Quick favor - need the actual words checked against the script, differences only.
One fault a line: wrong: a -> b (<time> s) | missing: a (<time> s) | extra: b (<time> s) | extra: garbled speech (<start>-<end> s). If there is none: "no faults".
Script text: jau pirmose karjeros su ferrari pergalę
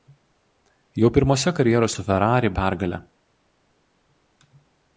no faults